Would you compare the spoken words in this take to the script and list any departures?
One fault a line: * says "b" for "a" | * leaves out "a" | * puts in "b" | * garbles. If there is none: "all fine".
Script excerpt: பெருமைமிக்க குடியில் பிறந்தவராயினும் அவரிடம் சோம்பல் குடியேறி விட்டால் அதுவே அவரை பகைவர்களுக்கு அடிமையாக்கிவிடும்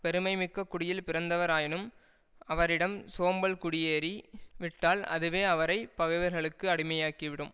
all fine